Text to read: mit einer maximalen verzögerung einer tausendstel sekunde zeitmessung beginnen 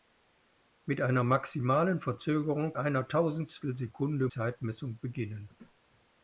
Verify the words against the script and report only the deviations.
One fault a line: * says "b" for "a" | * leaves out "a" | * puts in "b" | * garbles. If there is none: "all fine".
all fine